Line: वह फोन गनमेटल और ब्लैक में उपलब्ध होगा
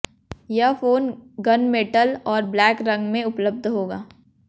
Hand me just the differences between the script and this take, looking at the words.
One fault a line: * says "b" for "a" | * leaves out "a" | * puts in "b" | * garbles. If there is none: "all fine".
* says "यह" for "वह"
* puts in "रंग"